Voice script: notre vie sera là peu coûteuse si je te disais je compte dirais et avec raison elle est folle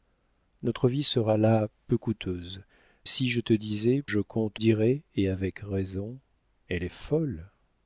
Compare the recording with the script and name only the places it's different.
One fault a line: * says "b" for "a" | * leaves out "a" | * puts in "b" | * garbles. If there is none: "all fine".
all fine